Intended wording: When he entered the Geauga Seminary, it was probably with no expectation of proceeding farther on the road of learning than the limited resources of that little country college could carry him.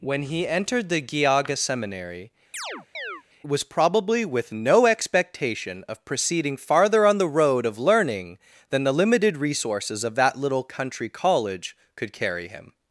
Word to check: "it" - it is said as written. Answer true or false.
false